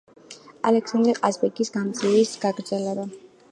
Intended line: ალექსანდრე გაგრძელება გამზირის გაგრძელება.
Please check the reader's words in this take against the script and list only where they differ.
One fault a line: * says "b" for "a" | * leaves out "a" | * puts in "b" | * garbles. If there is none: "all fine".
* says "ყაზბეგის" for "გაგრძელება"